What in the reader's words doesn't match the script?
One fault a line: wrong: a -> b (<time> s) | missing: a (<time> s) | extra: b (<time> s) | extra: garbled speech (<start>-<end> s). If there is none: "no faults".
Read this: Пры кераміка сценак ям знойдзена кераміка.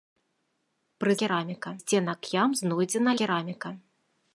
no faults